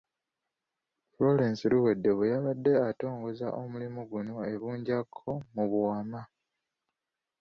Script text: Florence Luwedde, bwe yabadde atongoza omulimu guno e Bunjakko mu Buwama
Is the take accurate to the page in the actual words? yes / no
yes